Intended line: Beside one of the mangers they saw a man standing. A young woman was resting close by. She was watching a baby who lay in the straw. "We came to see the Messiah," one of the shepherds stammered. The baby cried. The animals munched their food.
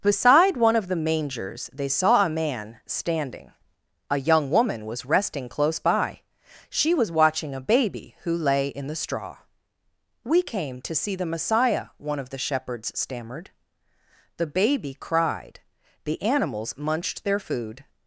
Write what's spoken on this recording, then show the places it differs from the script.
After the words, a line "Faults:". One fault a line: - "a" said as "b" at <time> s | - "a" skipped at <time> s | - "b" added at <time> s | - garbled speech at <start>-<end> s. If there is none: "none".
Beside one of the mangers they saw a man standing. A young woman was resting close by. She was watching a baby who lay in the straw. "We came to see the Messiah," one of the shepherds stammered. The baby cried. The animals munched their food.
Faults:
none